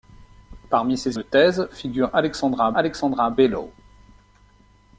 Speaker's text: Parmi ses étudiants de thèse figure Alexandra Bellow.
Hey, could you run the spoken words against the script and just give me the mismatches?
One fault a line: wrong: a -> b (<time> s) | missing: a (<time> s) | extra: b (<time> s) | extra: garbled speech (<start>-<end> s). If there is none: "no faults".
missing: étudiants (1.2 s)
extra: Alexandra (2.7 s)